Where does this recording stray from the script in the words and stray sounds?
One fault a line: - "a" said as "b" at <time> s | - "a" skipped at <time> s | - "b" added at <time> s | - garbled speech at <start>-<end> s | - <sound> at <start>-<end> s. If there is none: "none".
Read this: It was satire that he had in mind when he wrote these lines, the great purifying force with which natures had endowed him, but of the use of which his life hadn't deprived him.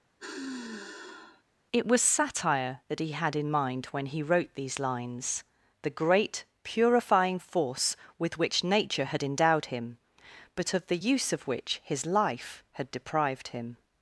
- sigh at 0.2-1.4 s
- "natures" said as "nature" at 8.6 s
- "hadn't" said as "had" at 12.7 s